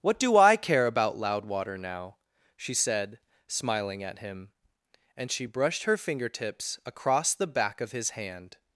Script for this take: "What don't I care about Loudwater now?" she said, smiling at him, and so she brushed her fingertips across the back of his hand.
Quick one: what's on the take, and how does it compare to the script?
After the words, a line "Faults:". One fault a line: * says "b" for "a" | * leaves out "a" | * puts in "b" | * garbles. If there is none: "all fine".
"What do I care about Loudwater now?" she said, smiling at him, and she brushed her fingertips across the back of his hand.
Faults:
* says "do" for "don't"
* leaves out "so"